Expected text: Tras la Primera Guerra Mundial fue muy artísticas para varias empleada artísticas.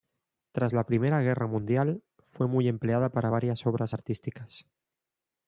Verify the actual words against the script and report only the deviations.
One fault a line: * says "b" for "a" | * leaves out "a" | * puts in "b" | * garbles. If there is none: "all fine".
* says "empleada" for "artísticas"
* says "obras" for "empleada"